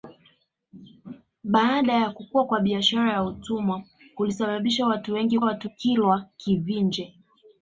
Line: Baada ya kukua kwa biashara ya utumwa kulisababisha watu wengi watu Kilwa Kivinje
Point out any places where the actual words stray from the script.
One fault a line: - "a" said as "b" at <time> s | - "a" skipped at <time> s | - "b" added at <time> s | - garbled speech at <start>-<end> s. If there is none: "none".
none